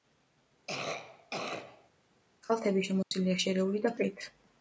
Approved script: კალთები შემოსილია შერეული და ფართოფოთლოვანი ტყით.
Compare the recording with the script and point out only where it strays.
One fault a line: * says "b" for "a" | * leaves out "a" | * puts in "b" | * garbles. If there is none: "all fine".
* leaves out "ფართოფოთლოვანი"